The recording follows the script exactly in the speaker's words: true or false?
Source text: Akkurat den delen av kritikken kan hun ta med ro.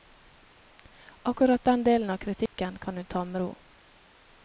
true